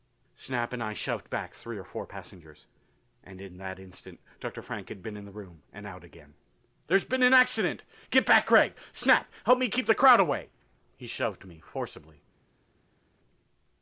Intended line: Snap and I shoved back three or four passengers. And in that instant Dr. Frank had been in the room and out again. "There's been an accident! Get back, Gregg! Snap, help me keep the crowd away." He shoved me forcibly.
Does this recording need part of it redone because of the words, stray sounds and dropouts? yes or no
no